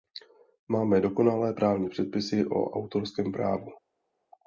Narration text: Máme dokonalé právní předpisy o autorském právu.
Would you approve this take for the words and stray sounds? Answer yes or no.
yes